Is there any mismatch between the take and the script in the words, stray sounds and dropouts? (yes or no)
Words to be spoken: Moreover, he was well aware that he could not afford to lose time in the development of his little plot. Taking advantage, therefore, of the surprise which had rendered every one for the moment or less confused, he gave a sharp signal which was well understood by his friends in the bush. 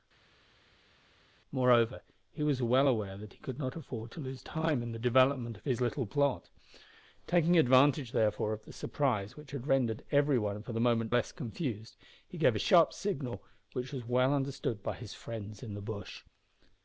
no